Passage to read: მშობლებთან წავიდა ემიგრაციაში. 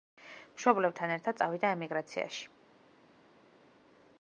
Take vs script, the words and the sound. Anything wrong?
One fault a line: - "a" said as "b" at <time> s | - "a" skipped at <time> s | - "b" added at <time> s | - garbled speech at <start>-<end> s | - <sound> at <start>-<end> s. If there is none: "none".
- "ერთად" added at 1.2 s